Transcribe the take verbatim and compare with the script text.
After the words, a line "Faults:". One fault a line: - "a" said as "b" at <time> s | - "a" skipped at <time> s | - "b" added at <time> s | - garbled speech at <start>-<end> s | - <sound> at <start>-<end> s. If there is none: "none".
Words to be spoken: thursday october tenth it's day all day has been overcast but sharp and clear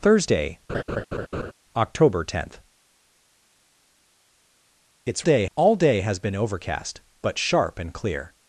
thursday october tenth it's day all day has been overcast but sharp and clear
Faults:
- laugh at 0.7-1.5 s